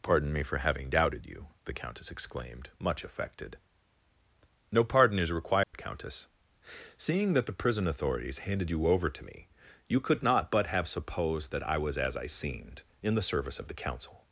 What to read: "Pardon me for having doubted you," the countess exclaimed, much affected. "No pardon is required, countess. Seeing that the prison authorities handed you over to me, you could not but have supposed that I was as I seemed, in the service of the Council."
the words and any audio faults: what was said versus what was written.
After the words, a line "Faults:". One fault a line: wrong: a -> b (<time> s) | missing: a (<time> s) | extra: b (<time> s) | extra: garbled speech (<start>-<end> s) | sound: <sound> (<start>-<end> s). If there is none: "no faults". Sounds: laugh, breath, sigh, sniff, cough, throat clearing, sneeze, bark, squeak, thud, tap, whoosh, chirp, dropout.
"Pardon me for having doubted you," the countess exclaimed, much affected. "No pardon is required, countess. Seeing that the prison authorities handed you over to me, you could not but have supposed that I was as I seemed, in the service of the Council."
Faults:
sound: dropout (5.6-5.7 s)